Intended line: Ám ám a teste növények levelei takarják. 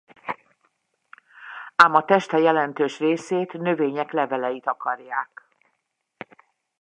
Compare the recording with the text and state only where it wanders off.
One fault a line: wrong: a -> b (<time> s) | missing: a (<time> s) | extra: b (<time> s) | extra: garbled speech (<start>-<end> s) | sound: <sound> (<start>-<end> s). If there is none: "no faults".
missing: ám (1.9 s)
extra: jelentős részét (2.4 s)